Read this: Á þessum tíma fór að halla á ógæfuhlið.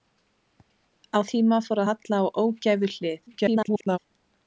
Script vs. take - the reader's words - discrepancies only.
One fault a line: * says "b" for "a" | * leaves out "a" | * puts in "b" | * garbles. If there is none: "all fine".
* leaves out "þessum"
* leaves out "að"
* garbles